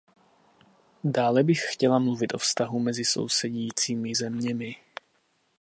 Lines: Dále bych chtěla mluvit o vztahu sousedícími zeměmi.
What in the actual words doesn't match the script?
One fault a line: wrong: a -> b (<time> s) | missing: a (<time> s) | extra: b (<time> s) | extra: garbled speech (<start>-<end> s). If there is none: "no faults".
extra: mezi (2.8 s)